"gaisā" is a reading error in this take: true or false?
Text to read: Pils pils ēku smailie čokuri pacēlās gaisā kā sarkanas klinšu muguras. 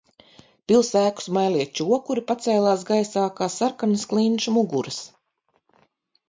false